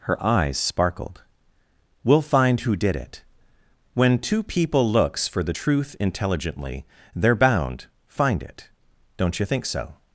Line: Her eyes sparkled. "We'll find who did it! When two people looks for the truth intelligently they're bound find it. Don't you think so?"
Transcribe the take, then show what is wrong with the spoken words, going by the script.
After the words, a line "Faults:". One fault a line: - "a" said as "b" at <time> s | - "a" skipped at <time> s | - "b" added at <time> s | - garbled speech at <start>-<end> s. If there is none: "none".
Her eyes sparkled. "We'll find who did it! When two people looks for the truth intelligently they're bound find it. Don't you think so?"
Faults:
none